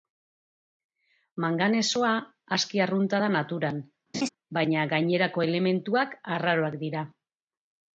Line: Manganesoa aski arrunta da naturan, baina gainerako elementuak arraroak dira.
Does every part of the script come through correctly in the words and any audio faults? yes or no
no